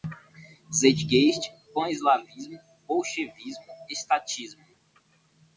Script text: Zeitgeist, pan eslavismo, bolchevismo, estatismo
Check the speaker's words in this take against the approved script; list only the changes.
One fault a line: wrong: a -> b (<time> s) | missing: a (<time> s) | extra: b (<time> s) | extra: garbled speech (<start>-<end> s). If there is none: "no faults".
no faults